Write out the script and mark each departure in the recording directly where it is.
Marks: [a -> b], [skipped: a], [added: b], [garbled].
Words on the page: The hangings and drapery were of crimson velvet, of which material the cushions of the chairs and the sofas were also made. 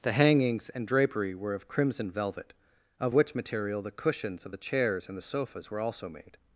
The hangings and drapery were of crimson velvet, of which material the cushions of the chairs and the sofas were also made.